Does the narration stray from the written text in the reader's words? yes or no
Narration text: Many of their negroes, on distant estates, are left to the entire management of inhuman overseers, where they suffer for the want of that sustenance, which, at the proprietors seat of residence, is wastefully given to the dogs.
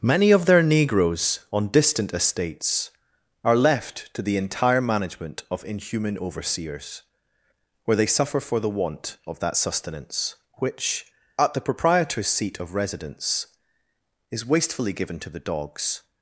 no